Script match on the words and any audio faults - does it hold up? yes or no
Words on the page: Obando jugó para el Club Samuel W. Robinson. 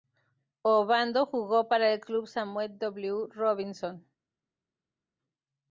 yes